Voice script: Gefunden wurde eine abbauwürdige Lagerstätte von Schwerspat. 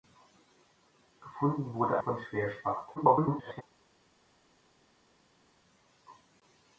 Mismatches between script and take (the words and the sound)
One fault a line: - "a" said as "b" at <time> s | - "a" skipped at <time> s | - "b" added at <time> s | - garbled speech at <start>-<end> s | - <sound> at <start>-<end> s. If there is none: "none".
- "eine abbauwürdige Lagerstätte" skipped at 2.0 s
- garbled speech at 3.0-3.6 s